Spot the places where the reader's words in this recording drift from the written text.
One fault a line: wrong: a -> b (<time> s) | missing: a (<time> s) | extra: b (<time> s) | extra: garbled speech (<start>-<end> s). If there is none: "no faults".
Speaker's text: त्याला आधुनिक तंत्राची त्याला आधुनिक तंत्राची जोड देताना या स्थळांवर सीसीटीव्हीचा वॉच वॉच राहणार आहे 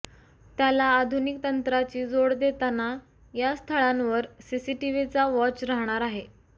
missing: त्याला आधुनिक तंत्राची (2.0 s)
missing: वॉच (5.6 s)